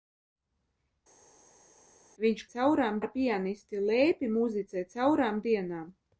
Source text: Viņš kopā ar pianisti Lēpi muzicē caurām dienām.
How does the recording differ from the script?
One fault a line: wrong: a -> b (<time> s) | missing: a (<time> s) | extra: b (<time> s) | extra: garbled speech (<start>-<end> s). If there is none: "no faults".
wrong: kopā -> caurām (2.5 s)